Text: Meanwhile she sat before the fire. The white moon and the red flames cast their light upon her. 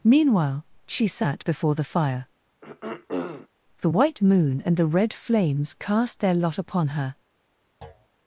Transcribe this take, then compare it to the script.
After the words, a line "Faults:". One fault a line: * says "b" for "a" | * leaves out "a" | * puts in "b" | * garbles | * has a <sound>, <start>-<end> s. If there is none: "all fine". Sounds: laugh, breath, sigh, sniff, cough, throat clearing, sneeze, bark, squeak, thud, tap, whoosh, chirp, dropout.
Meanwhile she sat before the fire. The white moon and the red flames cast their lot upon her.
Faults:
* has a throat clearing, 2.6-3.5 s
* says "lot" for "light"
* has a thud, 7.8-8.1 s